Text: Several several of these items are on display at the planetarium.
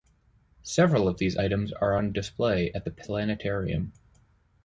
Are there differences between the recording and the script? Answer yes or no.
yes